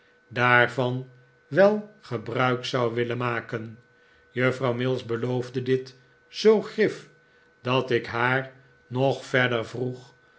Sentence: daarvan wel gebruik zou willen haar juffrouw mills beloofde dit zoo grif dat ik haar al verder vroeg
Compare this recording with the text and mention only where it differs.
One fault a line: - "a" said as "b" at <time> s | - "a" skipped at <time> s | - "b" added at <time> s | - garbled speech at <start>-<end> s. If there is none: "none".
- "haar" said as "maken" at 3.2 s
- "al" said as "nog" at 8.9 s